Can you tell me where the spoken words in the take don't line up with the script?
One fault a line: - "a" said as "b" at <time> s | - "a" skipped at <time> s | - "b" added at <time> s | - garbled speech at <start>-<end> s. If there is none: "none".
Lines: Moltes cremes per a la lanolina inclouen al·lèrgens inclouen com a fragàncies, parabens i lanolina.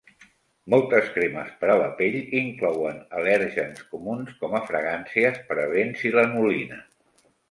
- "lanolina" said as "pell" at 2.0 s
- "inclouen" said as "comuns" at 4.0 s